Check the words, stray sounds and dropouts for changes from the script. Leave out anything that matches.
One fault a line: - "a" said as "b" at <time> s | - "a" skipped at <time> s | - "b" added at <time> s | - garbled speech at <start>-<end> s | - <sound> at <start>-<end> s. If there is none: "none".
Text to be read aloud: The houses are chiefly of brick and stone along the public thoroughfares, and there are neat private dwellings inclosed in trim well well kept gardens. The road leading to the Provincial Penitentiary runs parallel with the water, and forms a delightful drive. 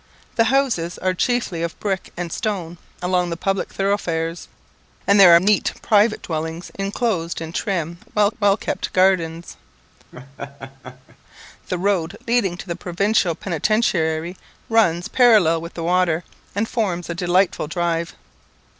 - laugh at 10.1-11.2 s